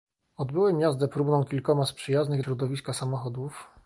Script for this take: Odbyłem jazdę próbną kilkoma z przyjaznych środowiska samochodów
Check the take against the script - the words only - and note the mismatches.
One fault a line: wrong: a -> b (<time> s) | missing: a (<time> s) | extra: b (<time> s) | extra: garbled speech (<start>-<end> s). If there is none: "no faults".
no faults